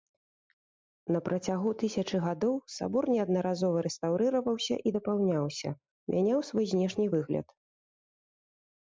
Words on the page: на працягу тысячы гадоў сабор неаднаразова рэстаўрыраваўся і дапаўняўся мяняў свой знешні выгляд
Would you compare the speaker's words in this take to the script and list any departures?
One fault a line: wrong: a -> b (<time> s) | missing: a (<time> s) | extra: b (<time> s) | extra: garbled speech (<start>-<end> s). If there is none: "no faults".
no faults